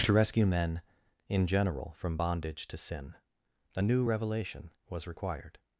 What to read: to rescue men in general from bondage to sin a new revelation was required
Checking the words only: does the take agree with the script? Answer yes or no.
yes